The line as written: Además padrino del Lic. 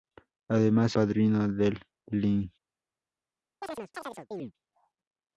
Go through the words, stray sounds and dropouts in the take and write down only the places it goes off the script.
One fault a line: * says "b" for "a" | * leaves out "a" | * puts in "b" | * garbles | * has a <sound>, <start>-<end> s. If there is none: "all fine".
* has a chirp, 3.6-4.5 s